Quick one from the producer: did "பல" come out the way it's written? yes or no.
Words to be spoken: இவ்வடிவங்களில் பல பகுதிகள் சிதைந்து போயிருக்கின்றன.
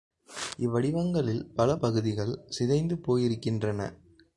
yes